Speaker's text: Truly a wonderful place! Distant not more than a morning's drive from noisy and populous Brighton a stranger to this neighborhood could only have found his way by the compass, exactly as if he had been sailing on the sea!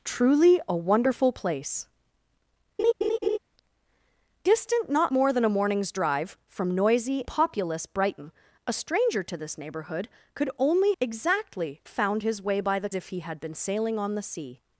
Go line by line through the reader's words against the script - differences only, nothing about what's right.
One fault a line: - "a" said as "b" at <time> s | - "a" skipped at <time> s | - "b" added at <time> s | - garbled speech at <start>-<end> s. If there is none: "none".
- "and" skipped at 7.2 s
- "have" said as "exactly" at 11.0 s
- "compass exactly as" skipped at 12.9 s